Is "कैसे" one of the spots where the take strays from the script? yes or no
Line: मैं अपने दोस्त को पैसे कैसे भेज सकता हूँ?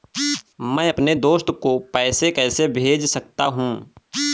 no